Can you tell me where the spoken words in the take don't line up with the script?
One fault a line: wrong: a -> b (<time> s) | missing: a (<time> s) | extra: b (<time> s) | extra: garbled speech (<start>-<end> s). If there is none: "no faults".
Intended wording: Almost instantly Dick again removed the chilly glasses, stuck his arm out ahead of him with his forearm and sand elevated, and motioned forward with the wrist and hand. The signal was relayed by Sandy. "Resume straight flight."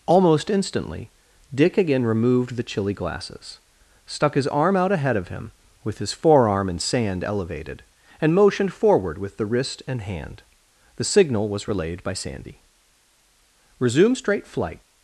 no faults